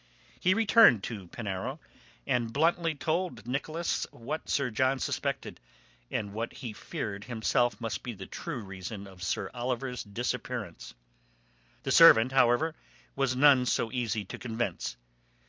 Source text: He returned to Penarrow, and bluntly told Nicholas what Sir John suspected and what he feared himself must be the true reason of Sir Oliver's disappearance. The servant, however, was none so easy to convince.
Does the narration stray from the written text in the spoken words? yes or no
no